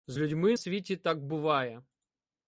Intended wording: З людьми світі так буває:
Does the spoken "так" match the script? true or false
true